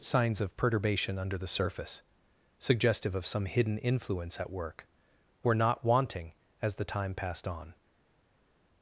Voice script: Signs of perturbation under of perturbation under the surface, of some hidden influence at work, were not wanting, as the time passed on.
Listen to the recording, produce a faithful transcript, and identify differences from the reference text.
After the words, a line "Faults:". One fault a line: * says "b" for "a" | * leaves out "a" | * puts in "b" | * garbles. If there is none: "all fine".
Signs of perturbation under the surface, suggestive of some hidden influence at work, were not wanting, as the time passed on.
Faults:
* leaves out "of perturbation under"
* puts in "suggestive"